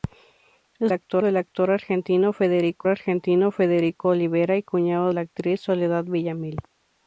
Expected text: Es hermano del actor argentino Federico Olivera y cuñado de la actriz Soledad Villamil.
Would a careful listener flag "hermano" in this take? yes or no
yes